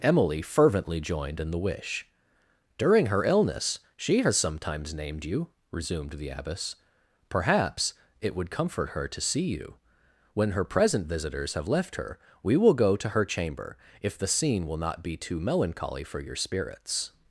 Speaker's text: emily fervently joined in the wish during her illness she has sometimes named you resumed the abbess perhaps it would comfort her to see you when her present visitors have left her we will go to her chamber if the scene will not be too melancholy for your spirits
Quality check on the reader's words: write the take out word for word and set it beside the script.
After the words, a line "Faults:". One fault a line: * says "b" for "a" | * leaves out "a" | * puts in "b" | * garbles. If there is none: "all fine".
emily fervently joined in the wish during her illness she has sometimes named you resumed the abbess perhaps it would comfort her to see you when her present visitors have left her we will go to her chamber if the scene will not be too melancholy for your spirits
Faults:
all fine